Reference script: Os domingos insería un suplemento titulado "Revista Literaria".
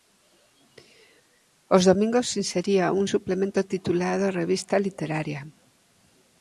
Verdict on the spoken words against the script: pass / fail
pass